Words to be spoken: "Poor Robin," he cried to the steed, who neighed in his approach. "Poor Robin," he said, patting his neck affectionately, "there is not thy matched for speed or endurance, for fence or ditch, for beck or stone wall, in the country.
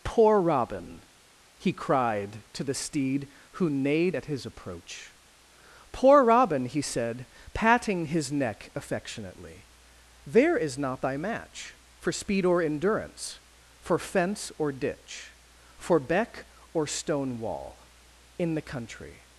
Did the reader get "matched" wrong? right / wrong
wrong